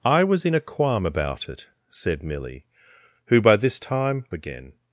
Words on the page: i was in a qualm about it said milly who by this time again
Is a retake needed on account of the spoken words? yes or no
no